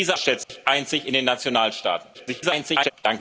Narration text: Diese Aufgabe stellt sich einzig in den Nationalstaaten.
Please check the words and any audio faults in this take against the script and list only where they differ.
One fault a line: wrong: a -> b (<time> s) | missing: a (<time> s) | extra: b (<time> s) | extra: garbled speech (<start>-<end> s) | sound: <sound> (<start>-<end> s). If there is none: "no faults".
missing: Aufgabe (0.2 s)
sound: dropout (0.4-0.5 s)
extra: garbled speech (2.1-2.9 s)